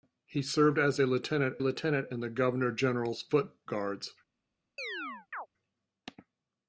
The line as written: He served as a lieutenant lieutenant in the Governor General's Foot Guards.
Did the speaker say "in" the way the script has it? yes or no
yes